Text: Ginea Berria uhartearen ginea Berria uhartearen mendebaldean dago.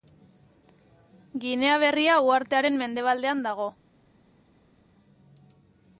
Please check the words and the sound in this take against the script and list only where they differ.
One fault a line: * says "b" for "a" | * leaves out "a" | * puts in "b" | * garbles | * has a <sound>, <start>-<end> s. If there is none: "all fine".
* leaves out "ginea Berria uhartearen"